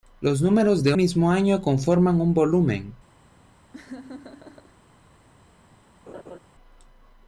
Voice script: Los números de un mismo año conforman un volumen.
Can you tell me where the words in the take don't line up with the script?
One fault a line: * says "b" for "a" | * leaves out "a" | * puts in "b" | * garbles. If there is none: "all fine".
* leaves out "un"